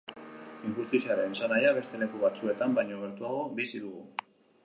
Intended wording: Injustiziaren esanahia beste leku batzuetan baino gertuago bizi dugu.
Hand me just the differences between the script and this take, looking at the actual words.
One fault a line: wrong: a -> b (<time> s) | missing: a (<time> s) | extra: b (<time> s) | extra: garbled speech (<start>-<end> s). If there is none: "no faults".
no faults